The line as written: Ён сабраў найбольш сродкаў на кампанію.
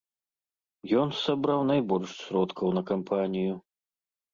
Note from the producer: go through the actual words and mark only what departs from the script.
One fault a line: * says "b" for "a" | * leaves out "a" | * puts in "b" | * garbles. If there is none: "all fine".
all fine